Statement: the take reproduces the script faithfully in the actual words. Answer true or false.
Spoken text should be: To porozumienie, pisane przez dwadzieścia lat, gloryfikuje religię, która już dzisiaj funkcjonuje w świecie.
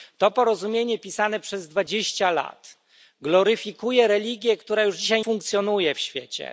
true